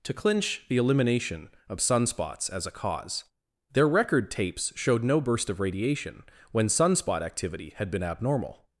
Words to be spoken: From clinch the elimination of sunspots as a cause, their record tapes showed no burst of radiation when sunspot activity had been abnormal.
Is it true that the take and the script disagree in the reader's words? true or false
true